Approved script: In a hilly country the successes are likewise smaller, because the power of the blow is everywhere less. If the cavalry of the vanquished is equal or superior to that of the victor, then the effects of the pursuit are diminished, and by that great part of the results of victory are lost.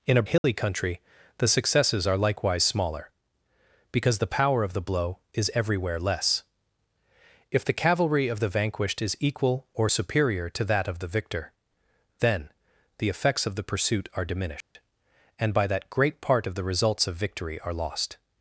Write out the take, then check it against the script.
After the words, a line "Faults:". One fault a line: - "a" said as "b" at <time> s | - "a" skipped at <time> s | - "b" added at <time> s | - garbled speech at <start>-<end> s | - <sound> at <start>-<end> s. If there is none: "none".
In a hilly country the successes are likewise smaller, because the power of the blow is everywhere less. If the cavalry of the vanquished is equal or superior to that of the victor, then the effects of the pursuit are diminished, and by that great part of the results of victory are lost.
Faults:
- dropout at 0.4-0.4 s
- dropout at 14.6-14.8 s